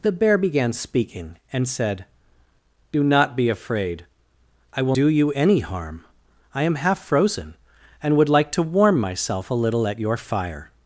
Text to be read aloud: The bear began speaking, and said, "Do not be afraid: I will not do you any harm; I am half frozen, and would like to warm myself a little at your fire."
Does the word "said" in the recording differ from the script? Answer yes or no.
no